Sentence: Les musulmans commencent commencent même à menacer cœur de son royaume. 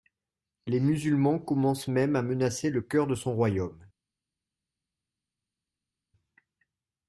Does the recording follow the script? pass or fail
fail